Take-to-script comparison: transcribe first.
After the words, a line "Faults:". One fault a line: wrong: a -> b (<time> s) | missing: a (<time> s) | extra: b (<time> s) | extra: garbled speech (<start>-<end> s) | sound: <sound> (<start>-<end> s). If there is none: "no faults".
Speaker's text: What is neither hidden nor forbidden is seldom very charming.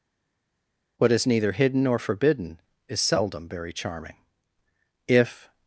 What is neither hidden nor forbidden is seldom very charming. If
Faults:
extra: If (5.1 s)